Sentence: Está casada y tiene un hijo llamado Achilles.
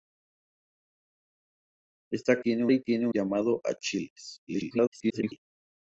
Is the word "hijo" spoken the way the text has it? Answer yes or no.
no